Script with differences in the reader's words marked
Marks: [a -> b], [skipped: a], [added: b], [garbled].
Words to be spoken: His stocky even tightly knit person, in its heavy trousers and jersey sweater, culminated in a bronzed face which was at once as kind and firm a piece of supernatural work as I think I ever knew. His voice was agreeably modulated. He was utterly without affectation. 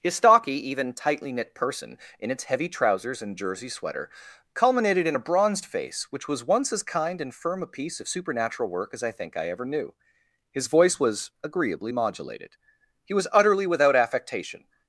His stocky even tightly knit person, in its heavy trousers and jersey sweater, culminated in a bronzed face which was [skipped: at] once as kind and firm a piece of supernatural work as I think I ever knew. His voice was agreeably modulated. He was utterly without affectation.